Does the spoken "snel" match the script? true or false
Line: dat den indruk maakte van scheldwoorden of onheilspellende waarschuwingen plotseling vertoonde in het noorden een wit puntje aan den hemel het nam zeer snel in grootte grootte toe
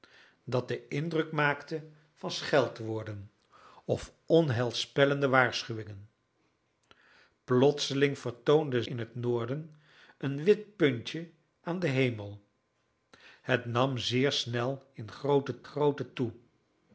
true